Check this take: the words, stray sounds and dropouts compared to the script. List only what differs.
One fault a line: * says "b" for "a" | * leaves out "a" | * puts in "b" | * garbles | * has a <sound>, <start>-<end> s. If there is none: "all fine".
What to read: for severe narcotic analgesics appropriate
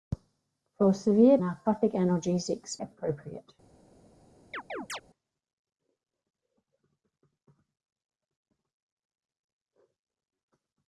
* has a chirp, 4.5-5.0 s